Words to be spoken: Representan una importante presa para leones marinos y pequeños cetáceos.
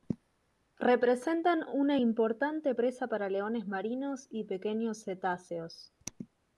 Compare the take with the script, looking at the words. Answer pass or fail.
pass